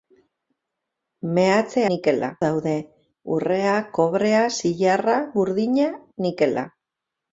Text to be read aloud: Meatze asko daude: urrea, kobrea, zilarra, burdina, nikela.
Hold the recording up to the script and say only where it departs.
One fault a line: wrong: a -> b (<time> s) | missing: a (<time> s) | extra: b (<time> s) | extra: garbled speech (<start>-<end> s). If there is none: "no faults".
wrong: asko -> nikela (1.9 s)